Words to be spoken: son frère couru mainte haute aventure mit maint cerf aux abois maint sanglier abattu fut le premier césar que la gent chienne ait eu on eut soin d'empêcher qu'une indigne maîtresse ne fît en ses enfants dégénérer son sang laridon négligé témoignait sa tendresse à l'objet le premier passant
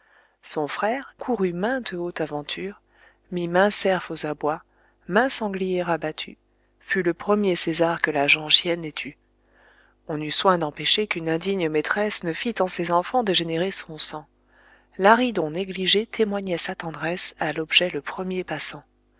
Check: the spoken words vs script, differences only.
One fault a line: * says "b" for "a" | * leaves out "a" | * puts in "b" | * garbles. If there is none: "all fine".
all fine